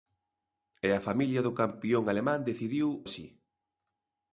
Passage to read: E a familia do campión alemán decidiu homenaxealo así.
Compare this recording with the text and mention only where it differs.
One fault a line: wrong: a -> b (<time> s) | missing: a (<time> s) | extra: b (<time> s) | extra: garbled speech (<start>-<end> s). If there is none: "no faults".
missing: homenaxealo (2.9 s)